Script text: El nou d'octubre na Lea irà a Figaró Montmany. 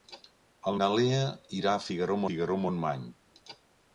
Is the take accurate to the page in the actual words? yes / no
no